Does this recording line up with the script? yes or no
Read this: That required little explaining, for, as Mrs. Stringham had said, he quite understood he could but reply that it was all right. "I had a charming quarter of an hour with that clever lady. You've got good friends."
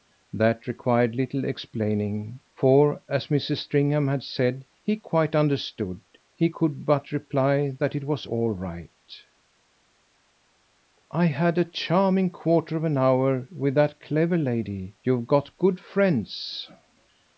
yes